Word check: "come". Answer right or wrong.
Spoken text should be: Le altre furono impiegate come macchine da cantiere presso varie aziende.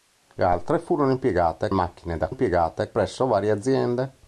wrong